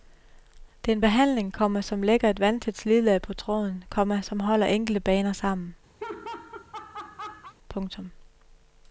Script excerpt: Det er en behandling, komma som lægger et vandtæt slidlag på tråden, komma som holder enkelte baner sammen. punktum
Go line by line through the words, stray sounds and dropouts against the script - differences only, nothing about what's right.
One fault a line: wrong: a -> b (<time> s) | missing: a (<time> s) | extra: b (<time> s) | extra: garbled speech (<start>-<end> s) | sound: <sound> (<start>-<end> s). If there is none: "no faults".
sound: laugh (6.0-7.5 s)